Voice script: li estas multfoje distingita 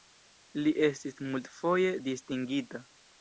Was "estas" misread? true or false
true